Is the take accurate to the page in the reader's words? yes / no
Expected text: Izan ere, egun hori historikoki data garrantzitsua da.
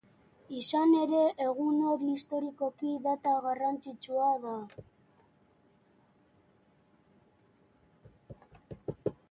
yes